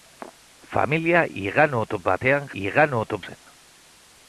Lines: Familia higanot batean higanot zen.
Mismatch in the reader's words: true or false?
false